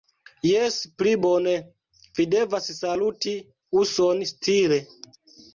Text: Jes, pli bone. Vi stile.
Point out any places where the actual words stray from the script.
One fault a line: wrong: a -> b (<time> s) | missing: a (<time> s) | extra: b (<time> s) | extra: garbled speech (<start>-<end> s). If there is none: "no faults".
extra: devas saluti uson (2.4 s)